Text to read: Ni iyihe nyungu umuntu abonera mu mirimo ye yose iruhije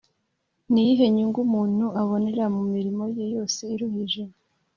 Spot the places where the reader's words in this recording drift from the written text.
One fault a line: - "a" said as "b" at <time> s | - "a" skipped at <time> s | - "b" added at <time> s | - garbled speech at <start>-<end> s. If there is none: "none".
none